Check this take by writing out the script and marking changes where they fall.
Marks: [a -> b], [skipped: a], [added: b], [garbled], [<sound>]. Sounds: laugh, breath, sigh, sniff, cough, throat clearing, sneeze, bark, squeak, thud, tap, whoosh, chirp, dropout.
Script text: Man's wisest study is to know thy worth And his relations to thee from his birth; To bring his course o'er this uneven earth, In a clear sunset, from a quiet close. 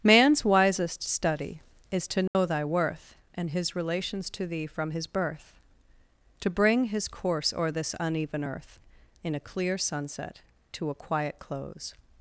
Man's wisest study is to know [dropout] thy worth And his relations to thee from his birth; To bring his course o'er this uneven earth, In a clear sunset, [from -> to] a quiet close.